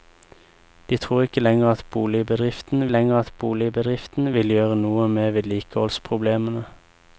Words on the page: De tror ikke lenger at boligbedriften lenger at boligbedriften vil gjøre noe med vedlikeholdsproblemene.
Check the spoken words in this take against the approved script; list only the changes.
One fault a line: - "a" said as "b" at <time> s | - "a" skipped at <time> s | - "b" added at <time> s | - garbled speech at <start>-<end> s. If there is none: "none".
none